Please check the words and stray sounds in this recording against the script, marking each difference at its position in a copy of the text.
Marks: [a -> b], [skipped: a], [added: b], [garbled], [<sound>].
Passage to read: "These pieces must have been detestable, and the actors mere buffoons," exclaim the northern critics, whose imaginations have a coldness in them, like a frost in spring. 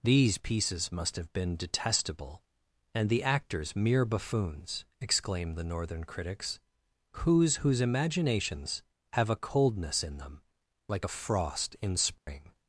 "These pieces must have been detestable, and the actors mere buffoons," exclaim the northern critics, whose [added: whose] imaginations have a coldness in them, like a frost in spring. [dropout]